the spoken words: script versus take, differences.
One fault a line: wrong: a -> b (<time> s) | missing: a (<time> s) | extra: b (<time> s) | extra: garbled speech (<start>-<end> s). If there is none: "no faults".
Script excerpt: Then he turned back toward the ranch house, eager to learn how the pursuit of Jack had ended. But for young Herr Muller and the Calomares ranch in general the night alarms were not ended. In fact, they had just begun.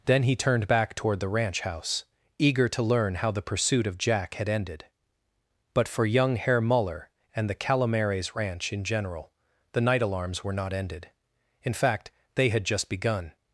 no faults